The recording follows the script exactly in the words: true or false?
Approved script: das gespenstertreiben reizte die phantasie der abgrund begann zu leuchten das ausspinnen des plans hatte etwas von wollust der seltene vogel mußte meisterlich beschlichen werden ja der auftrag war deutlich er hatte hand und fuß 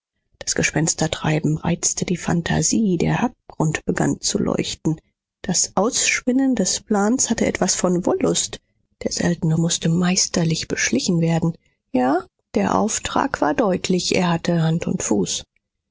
false